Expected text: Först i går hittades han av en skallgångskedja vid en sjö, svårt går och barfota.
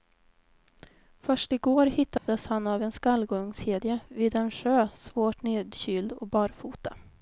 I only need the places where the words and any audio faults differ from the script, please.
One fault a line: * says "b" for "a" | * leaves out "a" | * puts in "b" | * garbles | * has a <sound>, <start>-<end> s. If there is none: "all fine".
* has a dropout, 2.2-2.3 s
* says "nedkyld" for "går"